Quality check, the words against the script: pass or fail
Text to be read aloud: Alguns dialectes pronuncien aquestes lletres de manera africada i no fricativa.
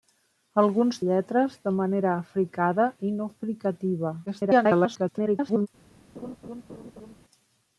fail